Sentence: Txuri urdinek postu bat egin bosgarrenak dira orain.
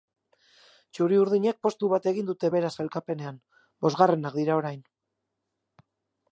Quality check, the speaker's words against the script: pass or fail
fail